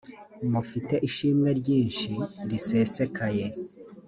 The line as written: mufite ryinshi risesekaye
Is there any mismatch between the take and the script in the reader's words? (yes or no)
yes